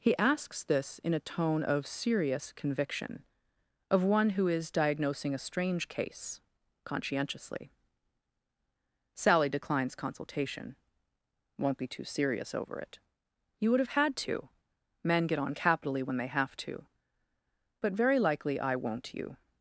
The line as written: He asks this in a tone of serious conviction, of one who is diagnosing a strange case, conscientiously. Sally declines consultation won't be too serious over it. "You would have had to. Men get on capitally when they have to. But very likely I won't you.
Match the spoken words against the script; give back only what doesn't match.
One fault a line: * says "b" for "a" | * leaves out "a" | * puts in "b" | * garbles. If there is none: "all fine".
all fine